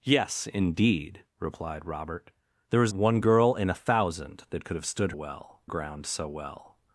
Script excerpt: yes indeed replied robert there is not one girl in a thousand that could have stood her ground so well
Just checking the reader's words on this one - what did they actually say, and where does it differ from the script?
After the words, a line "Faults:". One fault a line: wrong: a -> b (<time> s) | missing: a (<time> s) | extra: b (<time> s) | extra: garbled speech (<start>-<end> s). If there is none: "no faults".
yes indeed replied robert there is one girl in a thousand that could have stood well ground so well
Faults:
missing: not (2.9 s)
wrong: her -> well (5.1 s)